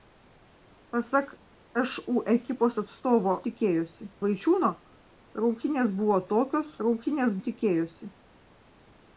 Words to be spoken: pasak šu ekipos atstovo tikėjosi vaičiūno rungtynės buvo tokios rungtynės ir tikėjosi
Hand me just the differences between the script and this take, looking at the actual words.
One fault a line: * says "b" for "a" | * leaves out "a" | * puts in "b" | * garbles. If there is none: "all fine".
all fine